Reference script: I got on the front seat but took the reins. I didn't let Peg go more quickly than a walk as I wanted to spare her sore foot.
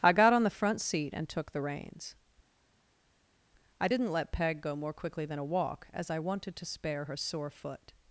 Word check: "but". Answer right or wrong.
wrong